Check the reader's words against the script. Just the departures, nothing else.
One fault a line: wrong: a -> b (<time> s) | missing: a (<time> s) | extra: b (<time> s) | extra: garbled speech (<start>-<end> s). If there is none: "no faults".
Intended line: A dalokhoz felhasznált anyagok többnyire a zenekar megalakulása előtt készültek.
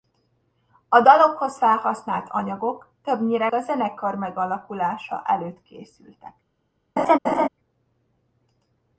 no faults